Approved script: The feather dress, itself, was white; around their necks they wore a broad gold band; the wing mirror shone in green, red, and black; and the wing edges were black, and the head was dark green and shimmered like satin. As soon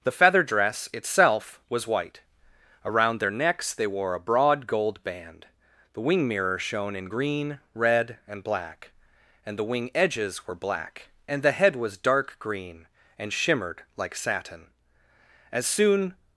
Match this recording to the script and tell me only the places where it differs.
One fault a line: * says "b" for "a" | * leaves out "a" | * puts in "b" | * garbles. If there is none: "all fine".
all fine